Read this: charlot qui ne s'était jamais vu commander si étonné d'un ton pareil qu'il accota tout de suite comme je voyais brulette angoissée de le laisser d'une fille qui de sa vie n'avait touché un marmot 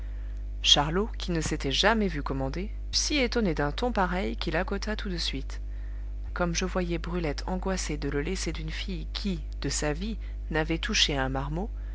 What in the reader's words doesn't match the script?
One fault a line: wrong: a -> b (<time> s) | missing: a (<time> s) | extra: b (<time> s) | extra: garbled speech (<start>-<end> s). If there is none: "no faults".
no faults